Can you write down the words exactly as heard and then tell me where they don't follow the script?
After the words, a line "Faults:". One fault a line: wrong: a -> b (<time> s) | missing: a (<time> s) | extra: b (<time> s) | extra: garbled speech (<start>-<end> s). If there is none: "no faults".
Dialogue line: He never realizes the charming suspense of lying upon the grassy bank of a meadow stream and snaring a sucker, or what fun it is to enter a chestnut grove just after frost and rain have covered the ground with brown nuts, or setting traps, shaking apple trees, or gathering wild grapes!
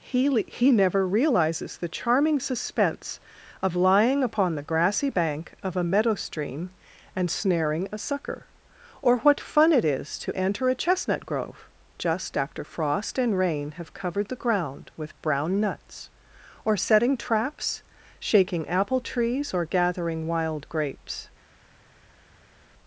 He he never realizes the charming suspense of lying upon the grassy bank of a meadow stream and snaring a sucker, or what fun it is to enter a chestnut grove just after frost and rain have covered the ground with brown nuts, or setting traps, shaking apple trees, or gathering wild grapes!
Faults:
extra: he (0.5 s)